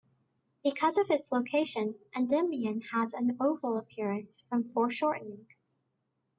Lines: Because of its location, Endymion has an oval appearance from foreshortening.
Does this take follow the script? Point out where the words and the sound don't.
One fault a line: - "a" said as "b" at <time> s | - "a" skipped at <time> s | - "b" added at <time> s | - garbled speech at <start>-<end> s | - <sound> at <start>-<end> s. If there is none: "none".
none